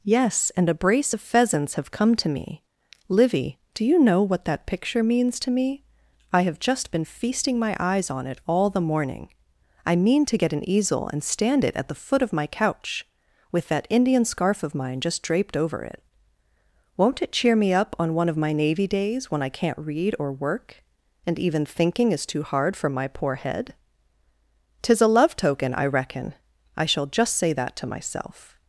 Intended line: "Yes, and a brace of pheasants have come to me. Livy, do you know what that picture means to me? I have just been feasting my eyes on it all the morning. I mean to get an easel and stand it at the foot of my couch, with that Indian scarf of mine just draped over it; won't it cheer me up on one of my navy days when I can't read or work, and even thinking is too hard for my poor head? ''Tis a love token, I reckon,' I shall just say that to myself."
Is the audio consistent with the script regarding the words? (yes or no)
yes